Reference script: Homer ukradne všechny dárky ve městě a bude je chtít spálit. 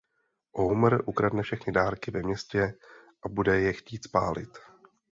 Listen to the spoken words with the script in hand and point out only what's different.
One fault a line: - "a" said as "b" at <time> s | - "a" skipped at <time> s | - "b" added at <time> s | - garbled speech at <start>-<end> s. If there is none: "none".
none